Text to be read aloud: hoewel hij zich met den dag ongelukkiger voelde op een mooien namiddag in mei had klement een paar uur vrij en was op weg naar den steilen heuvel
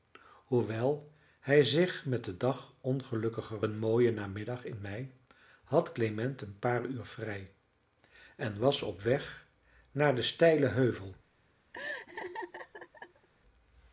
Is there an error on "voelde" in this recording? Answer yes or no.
yes